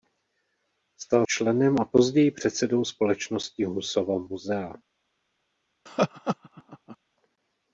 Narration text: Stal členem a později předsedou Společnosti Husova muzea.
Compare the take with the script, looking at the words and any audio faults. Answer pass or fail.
fail